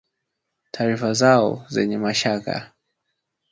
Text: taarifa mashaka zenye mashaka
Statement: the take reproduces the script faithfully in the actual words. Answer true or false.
false